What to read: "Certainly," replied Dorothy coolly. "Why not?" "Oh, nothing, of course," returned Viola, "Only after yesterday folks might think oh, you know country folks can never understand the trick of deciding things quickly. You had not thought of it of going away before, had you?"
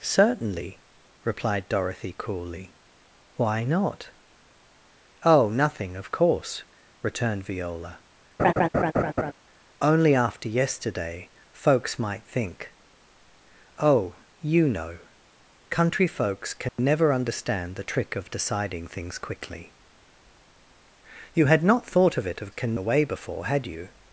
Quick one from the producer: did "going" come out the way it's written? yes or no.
no